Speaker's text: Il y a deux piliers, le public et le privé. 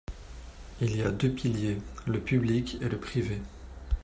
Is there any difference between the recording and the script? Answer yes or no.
no